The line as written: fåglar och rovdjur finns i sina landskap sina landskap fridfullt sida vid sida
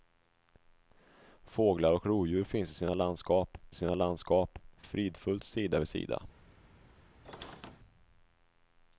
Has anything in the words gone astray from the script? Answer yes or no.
no